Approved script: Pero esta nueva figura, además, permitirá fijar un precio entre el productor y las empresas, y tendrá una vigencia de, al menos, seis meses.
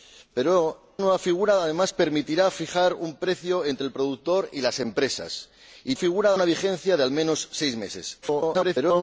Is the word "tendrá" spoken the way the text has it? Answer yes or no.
no